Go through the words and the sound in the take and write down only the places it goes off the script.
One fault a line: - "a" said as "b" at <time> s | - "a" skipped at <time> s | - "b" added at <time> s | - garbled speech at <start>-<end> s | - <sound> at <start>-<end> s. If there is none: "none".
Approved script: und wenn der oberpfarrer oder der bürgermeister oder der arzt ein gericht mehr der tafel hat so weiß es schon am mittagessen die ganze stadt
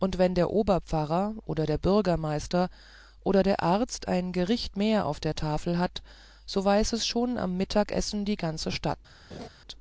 - "auf" added at 5.1 s
- laugh at 9.3-9.5 s